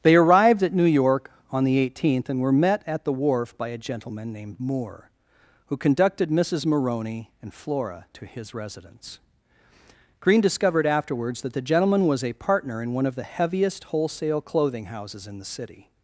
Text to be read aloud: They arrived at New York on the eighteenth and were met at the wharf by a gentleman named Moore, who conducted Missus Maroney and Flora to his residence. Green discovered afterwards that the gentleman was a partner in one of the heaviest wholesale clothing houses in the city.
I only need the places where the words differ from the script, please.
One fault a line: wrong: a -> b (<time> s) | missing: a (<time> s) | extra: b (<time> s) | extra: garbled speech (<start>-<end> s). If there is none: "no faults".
no faults